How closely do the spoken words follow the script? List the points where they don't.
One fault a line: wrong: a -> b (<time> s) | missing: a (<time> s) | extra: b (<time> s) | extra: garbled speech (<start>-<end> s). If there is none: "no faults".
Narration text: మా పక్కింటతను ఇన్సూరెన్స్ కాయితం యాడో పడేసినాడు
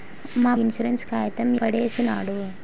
missing: పక్కింటతను (0.5 s)
missing: యాడో (1.5 s)